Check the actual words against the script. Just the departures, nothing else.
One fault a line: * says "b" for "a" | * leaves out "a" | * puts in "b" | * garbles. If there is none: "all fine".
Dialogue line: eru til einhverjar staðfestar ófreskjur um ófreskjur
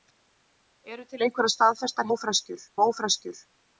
all fine